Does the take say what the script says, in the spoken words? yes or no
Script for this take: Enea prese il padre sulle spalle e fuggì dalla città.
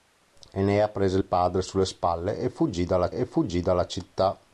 no